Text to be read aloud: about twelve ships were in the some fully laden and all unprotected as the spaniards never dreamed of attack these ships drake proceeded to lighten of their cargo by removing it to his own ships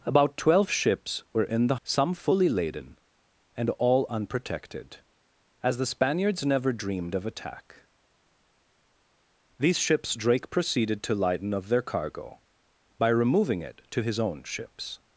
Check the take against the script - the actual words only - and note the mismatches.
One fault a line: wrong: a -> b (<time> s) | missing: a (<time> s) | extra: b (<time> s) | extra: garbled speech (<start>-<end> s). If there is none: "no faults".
no faults